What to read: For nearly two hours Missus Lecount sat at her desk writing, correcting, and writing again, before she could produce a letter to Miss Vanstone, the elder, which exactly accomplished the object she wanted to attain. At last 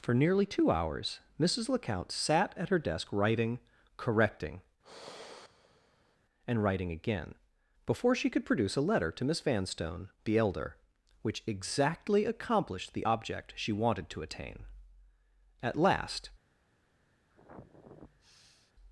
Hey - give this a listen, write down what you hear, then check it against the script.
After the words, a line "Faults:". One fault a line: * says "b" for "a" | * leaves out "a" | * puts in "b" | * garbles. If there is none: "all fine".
For nearly two hours Missus Lecount sat at her desk writing, correcting, and writing again, before she could produce a letter to Miss Vanstone, the elder, which exactly accomplished the object she wanted to attain. At last
Faults:
all fine